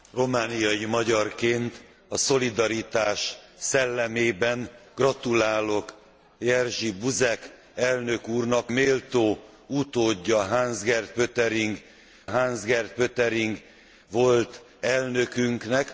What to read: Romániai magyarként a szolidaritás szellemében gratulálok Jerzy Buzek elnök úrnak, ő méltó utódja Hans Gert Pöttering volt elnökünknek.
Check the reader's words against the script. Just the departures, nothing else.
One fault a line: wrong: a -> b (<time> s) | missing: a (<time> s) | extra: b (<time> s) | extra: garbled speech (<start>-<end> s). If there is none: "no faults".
missing: ő (8.7 s)
extra: Hans Gert Pöttering (12.2 s)